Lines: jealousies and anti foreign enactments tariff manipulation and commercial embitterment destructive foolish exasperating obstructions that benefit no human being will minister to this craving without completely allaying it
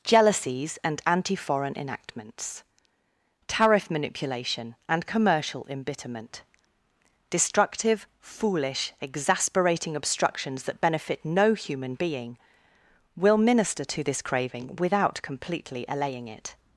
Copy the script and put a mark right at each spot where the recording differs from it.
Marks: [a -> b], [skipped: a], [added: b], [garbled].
jealousies and anti foreign enactments tariff manipulation and commercial embitterment destructive foolish exasperating obstructions that benefit no human being will minister to this craving without completely allaying it